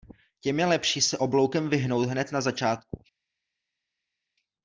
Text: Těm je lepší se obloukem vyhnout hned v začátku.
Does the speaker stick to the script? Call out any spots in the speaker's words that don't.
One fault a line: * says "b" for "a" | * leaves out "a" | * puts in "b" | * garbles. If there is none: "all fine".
* says "na" for "v"